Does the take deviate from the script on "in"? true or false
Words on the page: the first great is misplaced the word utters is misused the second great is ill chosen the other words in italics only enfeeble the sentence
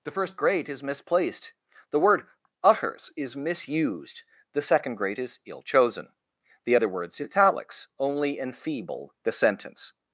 true